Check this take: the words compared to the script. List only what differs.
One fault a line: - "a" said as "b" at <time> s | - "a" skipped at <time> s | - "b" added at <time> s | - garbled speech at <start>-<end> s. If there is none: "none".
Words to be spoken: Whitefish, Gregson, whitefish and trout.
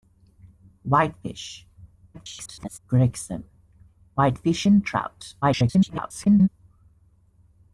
- garbled speech at 2.1-2.8 s
- garbled speech at 5.4-6.5 s